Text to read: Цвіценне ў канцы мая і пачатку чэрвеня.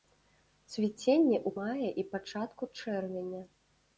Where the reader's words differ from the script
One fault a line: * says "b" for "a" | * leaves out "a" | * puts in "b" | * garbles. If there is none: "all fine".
* leaves out "канцы"